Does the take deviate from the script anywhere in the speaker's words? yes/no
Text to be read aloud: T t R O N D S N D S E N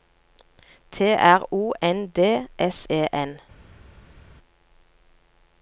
yes